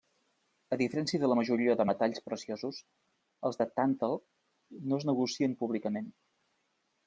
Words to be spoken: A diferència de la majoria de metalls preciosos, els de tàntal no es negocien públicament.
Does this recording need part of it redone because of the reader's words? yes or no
no